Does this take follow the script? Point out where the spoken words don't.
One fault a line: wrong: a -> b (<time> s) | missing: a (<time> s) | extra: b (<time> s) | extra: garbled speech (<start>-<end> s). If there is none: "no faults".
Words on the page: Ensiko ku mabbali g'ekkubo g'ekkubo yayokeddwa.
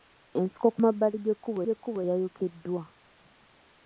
no faults